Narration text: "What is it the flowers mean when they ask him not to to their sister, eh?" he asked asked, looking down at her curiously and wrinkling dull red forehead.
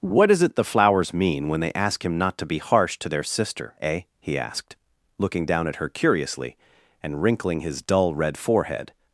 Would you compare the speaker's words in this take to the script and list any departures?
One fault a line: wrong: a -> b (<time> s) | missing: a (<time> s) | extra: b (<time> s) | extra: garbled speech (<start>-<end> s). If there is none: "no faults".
extra: be harsh (2.5 s)
missing: asked (4.8 s)
extra: his (7.6 s)